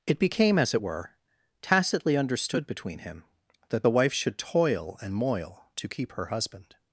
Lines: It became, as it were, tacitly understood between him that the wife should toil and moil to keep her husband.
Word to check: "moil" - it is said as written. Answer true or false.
true